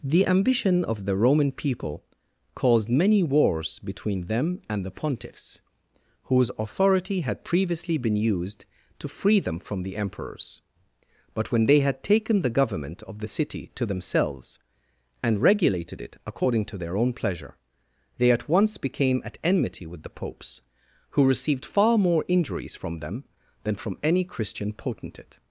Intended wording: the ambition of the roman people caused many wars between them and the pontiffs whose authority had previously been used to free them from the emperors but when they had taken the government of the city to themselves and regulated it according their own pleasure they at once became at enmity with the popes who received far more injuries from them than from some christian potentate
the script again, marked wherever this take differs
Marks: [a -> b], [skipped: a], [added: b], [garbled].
the ambition of the roman people caused many wars between them and the pontiffs whose authority had previously been used to free them from the emperors but when they had taken the government of the city to themselves and regulated it according [added: to] their own pleasure they at once became at enmity with the popes who received far more injuries from them than from [some -> any] christian potentate